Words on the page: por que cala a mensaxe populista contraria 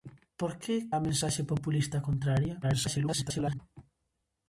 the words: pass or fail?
fail